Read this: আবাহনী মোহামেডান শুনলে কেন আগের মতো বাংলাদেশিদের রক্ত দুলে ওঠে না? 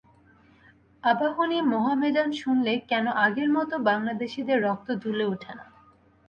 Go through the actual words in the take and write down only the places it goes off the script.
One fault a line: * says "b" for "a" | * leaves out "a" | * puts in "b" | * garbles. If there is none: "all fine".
all fine